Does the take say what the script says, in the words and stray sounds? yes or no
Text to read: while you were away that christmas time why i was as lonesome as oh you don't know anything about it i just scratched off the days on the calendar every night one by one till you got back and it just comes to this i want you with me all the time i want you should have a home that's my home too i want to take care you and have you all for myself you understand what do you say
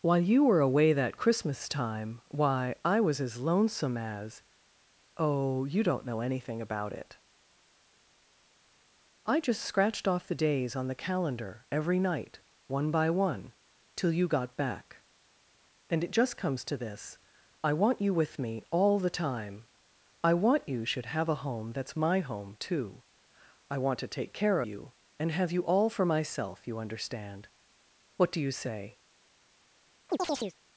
no